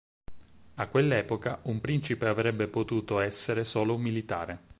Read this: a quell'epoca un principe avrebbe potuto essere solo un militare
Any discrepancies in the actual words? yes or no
no